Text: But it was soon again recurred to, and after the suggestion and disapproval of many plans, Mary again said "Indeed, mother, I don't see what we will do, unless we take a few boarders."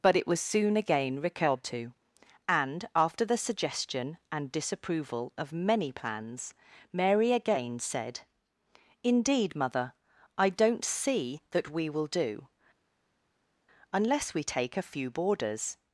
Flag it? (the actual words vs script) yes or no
yes